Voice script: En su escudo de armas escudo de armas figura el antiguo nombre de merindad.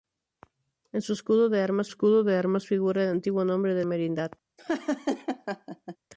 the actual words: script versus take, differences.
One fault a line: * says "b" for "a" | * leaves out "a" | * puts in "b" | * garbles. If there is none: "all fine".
all fine